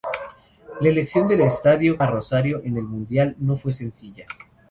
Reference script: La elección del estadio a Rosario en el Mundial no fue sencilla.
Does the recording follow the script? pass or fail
pass